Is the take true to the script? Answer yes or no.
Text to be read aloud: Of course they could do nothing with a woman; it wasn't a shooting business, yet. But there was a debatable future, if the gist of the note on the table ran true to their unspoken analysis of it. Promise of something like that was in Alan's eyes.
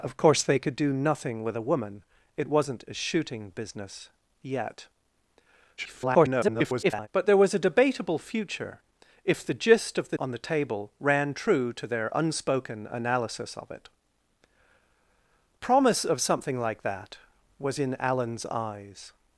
no